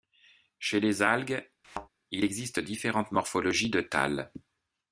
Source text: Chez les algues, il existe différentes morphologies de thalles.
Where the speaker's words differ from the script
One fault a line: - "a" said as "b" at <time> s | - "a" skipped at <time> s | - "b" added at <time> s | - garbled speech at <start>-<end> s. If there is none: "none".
none